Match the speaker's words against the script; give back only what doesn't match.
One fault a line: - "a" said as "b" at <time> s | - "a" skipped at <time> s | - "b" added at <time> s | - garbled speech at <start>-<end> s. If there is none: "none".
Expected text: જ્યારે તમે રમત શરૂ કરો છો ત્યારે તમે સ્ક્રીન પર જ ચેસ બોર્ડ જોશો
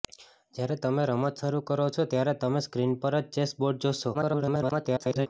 - garbled speech at 4.1-5.3 s